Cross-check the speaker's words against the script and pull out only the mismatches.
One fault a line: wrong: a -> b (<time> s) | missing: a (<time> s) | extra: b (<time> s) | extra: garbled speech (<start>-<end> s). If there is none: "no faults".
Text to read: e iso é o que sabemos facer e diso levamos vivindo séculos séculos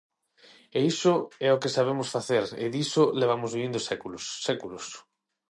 no faults